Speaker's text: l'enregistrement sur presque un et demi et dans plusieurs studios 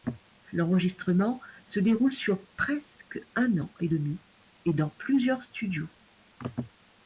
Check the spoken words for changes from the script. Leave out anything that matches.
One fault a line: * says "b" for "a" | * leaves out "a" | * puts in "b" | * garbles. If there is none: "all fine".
* puts in "se déroule"
* puts in "an"